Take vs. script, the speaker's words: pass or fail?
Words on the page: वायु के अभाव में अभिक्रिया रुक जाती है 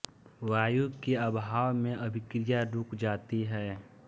pass